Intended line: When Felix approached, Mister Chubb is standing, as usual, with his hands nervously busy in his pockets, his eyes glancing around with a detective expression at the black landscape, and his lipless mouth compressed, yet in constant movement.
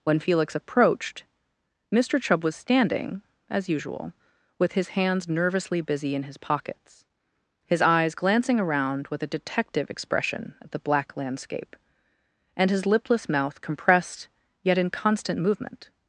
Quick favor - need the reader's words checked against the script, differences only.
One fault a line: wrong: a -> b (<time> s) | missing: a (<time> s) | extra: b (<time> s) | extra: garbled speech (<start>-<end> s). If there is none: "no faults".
wrong: is -> was (2.4 s)